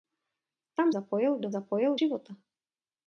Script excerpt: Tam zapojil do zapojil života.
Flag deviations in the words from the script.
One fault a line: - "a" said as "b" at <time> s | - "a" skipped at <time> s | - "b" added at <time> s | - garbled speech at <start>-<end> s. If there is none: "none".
none